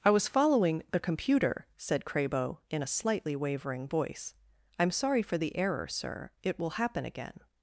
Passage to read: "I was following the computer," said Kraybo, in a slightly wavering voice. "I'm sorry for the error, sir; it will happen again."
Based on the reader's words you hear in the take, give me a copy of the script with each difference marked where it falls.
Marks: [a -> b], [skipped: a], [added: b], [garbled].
"I was following the computer," said Kraybo, in a slightly wavering voice. "I'm sorry for the error, sir; it will happen again."